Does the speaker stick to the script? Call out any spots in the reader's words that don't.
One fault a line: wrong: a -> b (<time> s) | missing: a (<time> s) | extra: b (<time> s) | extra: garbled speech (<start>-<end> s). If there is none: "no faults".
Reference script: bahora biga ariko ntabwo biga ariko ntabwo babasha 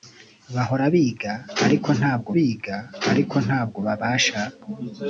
no faults